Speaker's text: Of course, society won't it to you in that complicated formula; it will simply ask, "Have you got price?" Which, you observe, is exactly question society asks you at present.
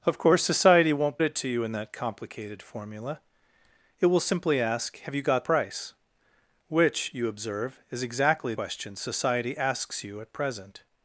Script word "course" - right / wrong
right